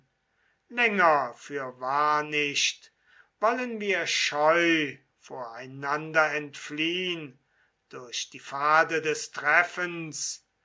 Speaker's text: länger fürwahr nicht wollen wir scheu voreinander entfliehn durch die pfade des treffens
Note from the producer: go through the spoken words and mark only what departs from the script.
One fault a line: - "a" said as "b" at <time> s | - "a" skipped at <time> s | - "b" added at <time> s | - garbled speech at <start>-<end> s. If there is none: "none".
none